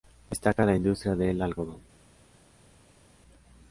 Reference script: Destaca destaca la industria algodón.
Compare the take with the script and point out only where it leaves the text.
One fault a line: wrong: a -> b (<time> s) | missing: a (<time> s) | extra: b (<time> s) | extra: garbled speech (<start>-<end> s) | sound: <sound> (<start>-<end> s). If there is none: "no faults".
missing: destaca (0.7 s)
extra: del (1.1 s)